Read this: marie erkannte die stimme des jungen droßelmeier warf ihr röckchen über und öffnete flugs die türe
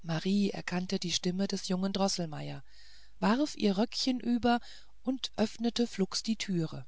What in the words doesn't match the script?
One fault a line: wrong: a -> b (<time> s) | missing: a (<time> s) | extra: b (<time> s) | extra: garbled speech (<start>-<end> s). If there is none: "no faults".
no faults